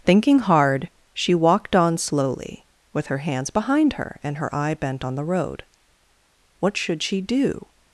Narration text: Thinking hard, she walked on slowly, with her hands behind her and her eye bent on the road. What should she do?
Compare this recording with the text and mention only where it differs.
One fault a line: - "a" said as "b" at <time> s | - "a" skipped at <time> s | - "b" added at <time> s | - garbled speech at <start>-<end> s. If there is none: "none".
none